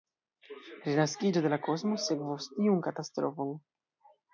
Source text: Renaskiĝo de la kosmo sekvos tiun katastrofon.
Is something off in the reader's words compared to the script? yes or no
no